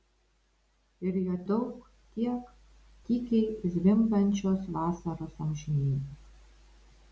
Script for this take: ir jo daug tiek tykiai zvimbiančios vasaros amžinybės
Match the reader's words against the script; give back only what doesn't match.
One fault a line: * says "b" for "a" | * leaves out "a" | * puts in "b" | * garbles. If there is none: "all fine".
all fine